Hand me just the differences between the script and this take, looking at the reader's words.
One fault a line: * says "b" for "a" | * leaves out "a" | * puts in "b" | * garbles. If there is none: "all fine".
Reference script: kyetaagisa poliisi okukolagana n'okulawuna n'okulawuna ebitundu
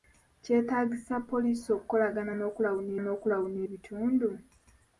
all fine